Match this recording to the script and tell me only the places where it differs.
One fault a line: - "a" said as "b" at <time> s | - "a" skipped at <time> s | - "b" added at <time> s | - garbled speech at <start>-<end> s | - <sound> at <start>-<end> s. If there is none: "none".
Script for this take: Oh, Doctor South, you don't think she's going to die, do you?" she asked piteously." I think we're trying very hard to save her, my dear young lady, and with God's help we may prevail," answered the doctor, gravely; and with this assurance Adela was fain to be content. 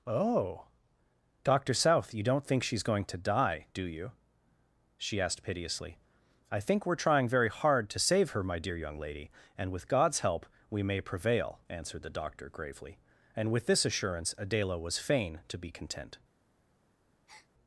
- breath at 17.3-17.5 s